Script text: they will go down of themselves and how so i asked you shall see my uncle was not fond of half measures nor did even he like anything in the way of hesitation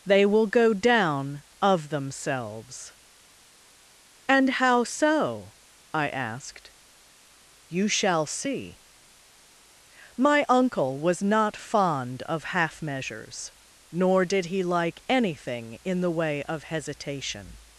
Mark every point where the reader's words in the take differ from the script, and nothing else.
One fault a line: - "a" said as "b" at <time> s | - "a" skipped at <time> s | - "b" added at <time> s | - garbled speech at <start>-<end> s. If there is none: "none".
- "even" skipped at 14.5 s